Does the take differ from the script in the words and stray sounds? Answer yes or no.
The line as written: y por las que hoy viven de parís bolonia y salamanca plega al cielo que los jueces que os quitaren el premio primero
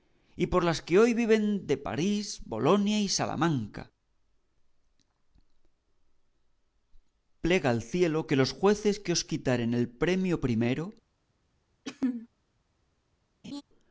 yes